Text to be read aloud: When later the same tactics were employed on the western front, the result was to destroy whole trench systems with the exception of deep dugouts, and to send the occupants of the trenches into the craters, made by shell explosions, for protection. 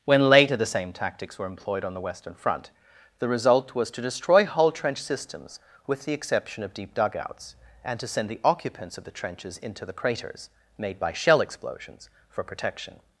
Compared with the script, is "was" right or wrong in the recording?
right